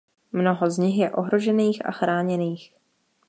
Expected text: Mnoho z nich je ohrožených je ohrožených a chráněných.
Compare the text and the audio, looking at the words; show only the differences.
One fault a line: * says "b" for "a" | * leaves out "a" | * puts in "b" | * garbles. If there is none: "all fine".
* leaves out "je ohrožených"